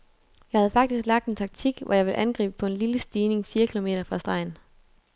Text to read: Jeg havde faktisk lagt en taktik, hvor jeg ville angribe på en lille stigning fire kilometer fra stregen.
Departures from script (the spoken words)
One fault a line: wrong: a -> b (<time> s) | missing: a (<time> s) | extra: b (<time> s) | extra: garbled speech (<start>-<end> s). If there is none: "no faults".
no faults